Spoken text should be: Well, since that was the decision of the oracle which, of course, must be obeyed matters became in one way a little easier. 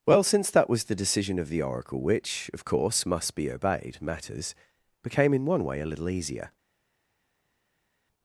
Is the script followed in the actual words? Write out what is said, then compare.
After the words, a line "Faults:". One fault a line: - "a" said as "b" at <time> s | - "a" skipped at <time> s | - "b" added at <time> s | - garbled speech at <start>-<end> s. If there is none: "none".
Well, since that was the decision of the oracle which, of course, must be obeyed matters became in one way a little easier.
Faults:
none